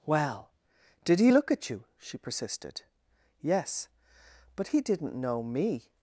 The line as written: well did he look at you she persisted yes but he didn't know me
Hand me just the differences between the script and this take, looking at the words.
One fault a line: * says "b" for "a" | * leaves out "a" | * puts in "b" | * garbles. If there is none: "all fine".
all fine